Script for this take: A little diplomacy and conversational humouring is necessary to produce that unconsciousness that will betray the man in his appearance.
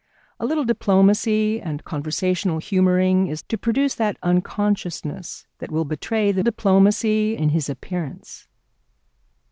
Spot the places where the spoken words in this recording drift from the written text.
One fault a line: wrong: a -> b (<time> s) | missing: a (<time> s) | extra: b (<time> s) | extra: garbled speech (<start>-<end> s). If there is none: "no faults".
missing: necessary (3.4 s)
wrong: man -> diplomacy (6.4 s)